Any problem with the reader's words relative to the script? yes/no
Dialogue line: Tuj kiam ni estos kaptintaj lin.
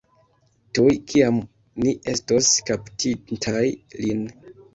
no